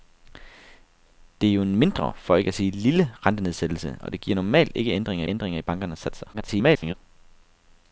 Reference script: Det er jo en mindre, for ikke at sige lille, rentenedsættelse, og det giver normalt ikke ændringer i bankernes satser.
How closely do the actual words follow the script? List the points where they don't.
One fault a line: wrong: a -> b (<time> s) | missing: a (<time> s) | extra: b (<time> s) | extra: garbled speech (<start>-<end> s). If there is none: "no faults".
extra: ændringer (5.3 s)
extra: garbled speech (6.3-6.9 s)